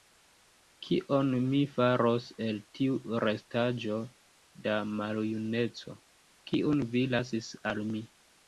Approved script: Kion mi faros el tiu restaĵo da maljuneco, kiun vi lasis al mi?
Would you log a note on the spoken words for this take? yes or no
no